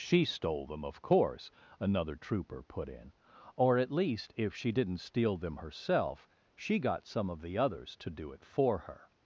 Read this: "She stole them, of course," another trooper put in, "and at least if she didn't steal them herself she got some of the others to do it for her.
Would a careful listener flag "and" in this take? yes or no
yes